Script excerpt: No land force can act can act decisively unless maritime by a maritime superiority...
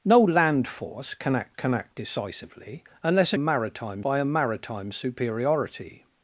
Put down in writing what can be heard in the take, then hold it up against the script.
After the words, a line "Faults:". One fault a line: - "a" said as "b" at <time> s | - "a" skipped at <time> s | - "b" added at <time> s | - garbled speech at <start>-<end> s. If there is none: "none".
No land force can act can act decisively unless maritime by a maritime superiority...
Faults:
none